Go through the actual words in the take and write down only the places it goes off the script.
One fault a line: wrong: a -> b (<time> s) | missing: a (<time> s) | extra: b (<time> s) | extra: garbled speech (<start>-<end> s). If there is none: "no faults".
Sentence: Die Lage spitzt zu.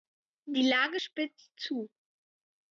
no faults